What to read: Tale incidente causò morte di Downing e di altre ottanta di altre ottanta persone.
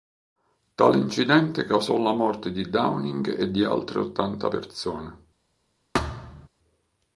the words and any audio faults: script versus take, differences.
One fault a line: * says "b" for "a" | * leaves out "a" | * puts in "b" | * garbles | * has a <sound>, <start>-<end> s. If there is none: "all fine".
* puts in "la"
* leaves out "di altre ottanta"
* has a thud, 5.9-6.5 s